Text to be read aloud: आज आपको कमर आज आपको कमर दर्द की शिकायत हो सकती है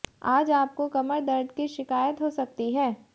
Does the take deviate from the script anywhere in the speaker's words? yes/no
yes